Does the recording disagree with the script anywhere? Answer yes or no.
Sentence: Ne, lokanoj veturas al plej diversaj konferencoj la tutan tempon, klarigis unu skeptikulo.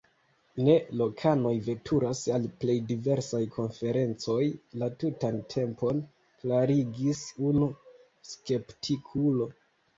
no